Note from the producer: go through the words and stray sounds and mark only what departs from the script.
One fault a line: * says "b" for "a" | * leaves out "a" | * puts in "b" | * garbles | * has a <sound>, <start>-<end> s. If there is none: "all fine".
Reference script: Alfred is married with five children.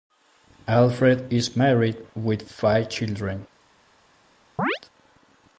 * has a chirp, 4.6-4.8 s